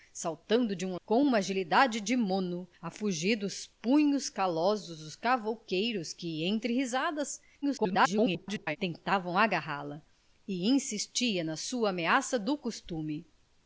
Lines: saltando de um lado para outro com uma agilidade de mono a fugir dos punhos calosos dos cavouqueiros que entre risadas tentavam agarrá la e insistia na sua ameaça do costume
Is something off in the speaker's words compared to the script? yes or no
yes